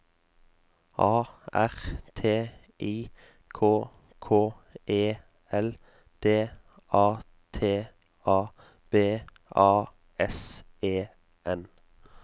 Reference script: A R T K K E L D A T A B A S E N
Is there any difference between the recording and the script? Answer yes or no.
yes